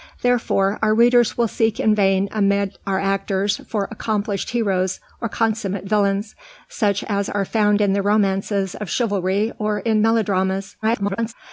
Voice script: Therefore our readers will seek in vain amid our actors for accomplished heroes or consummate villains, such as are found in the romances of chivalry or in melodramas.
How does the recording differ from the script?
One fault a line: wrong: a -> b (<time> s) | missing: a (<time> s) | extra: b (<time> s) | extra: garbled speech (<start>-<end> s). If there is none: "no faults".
extra: garbled speech (10.8-11.3 s)